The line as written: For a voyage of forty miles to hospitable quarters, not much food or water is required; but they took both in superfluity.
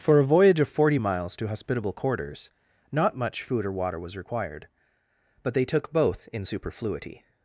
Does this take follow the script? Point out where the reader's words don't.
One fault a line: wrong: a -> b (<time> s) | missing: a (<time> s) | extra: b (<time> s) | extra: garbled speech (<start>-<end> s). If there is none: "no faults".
wrong: is -> was (4.0 s)